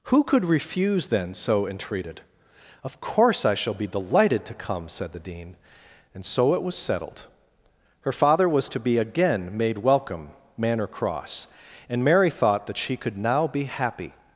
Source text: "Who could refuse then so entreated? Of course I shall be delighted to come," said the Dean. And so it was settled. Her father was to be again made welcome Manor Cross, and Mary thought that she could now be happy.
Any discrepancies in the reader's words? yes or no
no